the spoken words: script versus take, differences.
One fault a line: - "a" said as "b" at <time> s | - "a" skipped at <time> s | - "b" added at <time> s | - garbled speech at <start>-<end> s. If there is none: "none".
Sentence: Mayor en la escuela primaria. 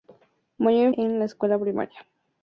none